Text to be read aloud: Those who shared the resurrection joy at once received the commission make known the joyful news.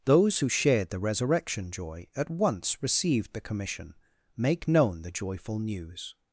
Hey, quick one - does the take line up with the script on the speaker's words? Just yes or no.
yes